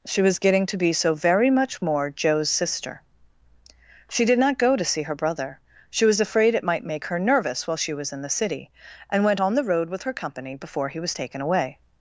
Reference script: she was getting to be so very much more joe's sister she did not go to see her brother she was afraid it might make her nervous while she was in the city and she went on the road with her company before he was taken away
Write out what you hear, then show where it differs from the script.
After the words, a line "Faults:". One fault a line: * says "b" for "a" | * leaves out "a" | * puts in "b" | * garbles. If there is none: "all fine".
she was getting to be so very much more joe's sister she did not go to see her brother she was afraid it might make her nervous while she was in the city and went on the road with her company before he was taken away
Faults:
* leaves out "she"